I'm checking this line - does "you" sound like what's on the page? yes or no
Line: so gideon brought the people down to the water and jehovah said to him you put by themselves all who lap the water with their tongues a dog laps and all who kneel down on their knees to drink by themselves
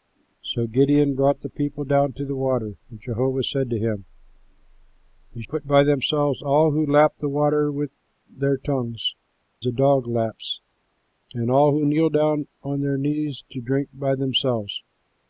yes